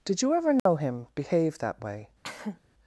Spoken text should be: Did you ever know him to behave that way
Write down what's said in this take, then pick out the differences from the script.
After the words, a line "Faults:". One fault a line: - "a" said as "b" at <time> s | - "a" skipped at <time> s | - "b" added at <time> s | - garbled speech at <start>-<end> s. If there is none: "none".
Did you ever know him behave that way
Faults:
- "to" skipped at 1.1 s